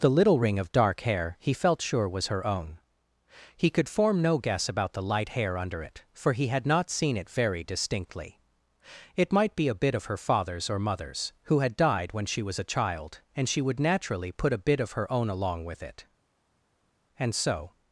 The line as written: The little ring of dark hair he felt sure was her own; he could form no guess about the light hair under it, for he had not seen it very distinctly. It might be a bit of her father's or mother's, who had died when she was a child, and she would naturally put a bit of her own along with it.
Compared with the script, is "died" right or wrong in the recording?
right